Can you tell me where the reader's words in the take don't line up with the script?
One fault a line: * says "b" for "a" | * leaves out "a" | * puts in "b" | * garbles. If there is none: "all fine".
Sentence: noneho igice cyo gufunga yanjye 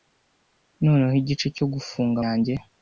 all fine